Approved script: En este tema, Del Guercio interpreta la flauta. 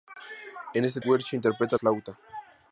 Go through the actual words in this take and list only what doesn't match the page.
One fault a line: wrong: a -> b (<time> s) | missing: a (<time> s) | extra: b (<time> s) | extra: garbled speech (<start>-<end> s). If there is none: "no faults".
missing: tema Del (1.0 s)
missing: la (1.8 s)